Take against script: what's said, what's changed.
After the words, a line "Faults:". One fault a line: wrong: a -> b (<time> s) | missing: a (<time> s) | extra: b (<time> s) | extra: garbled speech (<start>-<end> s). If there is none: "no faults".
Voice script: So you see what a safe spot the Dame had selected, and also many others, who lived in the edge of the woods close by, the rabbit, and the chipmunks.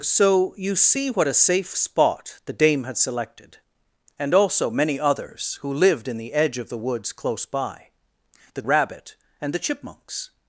So you see what a safe spot the Dame had selected, and also many others, who lived in the edge of the woods close by, the rabbit, and the chipmunks.
Faults:
no faults